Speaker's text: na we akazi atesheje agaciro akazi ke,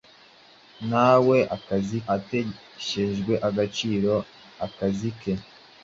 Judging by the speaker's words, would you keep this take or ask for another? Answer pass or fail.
pass